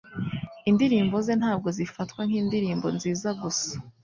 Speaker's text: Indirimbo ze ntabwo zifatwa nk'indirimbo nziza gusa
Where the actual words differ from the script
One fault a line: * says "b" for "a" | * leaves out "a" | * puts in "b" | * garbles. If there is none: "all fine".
all fine